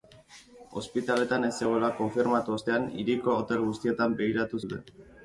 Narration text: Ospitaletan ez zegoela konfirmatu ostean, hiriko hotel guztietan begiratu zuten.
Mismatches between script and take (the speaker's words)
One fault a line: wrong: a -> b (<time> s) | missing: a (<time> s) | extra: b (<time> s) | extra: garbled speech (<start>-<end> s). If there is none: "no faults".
no faults